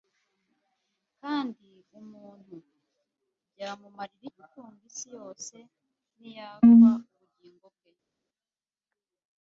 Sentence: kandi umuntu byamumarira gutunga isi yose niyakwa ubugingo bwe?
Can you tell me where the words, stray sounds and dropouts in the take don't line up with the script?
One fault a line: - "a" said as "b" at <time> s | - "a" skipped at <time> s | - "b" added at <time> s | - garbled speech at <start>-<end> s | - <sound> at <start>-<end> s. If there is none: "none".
none